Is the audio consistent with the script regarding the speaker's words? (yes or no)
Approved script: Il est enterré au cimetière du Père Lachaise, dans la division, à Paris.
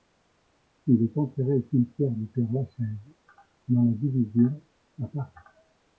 yes